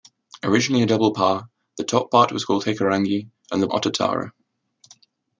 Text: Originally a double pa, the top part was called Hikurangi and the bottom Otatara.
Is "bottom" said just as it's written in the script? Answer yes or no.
no